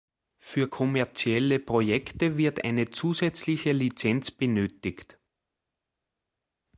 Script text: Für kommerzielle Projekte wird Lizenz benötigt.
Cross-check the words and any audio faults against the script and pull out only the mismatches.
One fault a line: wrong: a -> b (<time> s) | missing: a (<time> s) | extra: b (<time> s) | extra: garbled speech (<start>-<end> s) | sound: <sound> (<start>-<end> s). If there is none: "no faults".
extra: eine zusätzliche (2.6 s)